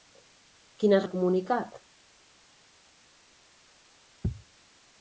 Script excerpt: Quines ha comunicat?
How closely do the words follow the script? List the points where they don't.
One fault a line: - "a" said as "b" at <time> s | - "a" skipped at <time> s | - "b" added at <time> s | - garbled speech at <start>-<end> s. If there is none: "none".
none